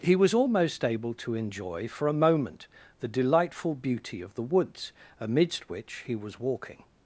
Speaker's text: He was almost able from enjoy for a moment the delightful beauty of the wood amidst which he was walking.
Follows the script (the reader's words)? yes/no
no